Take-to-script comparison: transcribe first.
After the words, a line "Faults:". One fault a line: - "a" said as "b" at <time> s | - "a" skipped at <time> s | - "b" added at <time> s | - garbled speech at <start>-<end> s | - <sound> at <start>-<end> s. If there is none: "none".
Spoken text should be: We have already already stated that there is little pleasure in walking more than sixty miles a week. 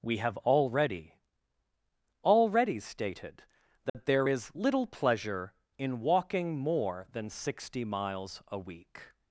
We have already already stated that there is little pleasure in walking more than sixty miles a week.
Faults:
- dropout at 3.9-3.9 s